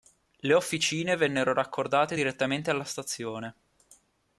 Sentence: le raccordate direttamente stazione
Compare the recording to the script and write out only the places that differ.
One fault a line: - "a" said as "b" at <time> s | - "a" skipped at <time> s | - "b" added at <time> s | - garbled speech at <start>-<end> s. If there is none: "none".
- "officine vennero" added at 0.6 s
- "alla" added at 2.7 s